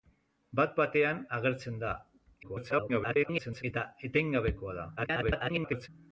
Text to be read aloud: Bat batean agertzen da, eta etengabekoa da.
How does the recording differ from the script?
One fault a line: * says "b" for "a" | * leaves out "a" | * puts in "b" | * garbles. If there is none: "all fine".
* garbles
* garbles